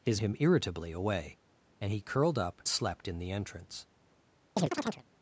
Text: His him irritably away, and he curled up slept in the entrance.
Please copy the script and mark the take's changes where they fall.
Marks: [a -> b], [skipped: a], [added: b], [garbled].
His him irritably away, and he curled up slept in the entrance.